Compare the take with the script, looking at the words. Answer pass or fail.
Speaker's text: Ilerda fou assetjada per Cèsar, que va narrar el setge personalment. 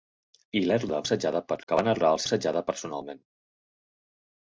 fail